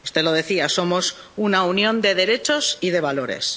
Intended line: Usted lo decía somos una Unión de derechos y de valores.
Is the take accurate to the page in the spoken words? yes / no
yes